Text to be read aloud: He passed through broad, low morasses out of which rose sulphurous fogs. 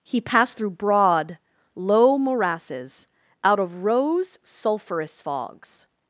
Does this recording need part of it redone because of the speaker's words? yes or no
yes